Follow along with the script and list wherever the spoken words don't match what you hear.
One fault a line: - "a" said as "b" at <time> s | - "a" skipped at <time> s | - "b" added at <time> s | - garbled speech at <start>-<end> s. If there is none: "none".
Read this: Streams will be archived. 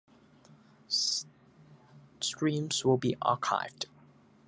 none